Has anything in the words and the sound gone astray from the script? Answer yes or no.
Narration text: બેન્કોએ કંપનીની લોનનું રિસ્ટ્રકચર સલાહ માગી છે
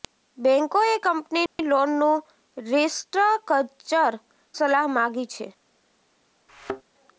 yes